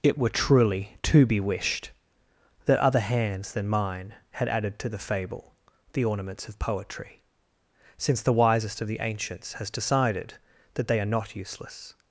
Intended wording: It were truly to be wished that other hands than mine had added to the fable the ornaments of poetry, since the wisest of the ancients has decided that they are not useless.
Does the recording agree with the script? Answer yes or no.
yes